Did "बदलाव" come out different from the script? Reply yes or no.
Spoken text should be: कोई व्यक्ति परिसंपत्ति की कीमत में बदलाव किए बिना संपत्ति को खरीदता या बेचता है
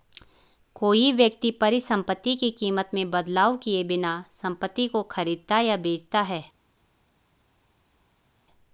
no